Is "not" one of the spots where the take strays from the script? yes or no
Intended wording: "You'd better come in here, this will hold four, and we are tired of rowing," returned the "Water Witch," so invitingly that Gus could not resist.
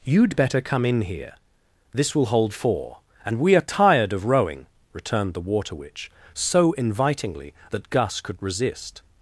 yes